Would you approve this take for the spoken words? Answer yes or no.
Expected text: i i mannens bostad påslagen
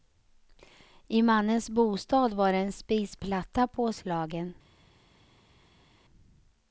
no